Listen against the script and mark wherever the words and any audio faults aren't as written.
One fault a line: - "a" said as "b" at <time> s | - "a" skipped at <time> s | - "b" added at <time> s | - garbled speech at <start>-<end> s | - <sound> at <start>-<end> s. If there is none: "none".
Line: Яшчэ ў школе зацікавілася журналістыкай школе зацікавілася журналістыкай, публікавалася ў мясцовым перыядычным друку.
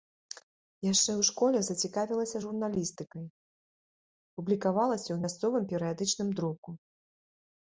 - "школе зацікавілася журналістыкай" skipped at 3.3 s